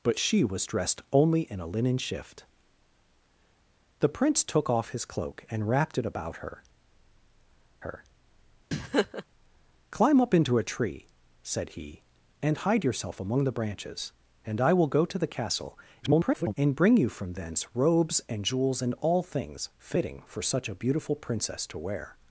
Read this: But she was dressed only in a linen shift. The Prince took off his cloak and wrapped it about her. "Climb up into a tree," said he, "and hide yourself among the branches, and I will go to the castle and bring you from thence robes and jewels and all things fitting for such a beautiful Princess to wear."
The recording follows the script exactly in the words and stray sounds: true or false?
false